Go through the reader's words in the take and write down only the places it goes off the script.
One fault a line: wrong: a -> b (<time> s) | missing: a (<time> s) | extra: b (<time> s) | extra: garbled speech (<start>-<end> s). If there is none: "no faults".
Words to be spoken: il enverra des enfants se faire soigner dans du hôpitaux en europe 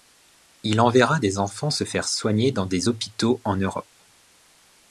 wrong: du -> des (2.6 s)